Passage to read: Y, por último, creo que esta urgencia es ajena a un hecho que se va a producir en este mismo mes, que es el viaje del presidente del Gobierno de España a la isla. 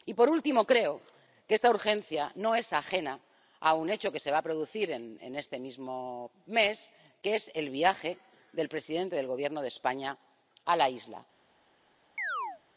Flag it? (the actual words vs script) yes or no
yes